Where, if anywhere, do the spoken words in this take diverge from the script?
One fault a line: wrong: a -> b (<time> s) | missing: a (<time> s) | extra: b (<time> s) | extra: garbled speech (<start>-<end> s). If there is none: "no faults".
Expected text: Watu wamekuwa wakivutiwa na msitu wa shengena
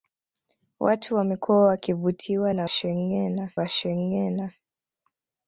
wrong: msitu -> shengena (2.7 s)